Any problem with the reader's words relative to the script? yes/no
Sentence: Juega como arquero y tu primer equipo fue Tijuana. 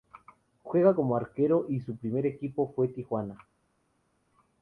yes